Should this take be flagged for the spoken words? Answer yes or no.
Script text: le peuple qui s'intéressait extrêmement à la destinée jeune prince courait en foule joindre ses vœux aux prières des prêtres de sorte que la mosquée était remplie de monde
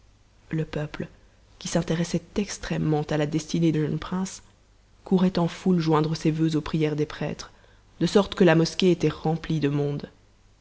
no